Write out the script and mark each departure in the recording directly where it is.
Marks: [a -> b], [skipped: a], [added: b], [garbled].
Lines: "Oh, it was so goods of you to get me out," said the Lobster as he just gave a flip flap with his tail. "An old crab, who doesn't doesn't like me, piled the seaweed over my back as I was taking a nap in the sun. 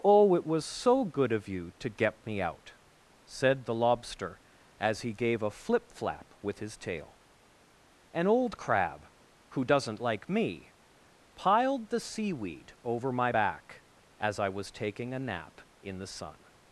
"Oh, it was so [goods -> good] of you to get me out," said the Lobster as he [skipped: just] gave a flip flap with his tail. "An old crab, who doesn't [skipped: doesn't] like me, piled the seaweed over my back as I was taking a nap in the sun.